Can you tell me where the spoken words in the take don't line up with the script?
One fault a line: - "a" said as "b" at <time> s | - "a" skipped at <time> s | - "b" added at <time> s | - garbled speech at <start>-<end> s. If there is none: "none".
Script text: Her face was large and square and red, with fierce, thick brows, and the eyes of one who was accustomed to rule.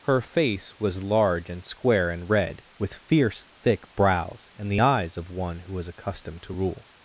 none